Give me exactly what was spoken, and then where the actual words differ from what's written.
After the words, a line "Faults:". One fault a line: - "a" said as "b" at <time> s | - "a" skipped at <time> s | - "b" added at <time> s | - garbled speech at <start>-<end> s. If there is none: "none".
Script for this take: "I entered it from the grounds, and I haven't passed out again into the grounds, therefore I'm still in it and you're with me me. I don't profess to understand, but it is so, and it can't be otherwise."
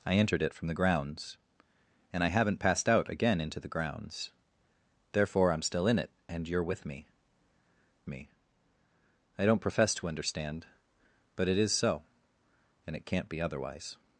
"I entered it from the grounds, and I haven't passed out again into the grounds, therefore I'm still in it and you're with me me. I don't profess to understand, but it is so, and it can't be otherwise."
Faults:
none